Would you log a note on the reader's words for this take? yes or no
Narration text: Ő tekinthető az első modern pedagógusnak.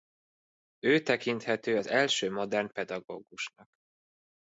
no